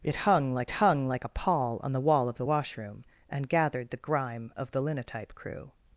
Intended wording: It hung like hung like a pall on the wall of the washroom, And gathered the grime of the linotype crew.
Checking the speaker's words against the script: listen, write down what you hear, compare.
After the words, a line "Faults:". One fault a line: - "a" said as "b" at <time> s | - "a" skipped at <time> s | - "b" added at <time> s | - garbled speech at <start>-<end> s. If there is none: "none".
It hung like hung like a pall on the wall of the washroom, And gathered the grime of the linotype crew.
Faults:
none